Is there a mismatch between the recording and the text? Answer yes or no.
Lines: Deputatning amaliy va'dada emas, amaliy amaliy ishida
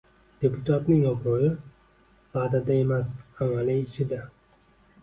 yes